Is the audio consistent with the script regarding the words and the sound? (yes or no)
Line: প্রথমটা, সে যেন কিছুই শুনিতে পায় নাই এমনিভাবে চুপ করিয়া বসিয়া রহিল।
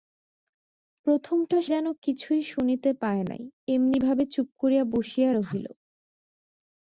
no